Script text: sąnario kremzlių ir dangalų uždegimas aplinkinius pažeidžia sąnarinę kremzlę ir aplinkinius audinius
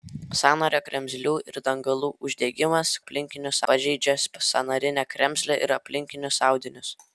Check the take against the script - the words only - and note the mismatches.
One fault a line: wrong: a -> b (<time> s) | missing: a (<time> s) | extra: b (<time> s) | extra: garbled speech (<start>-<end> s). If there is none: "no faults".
no faults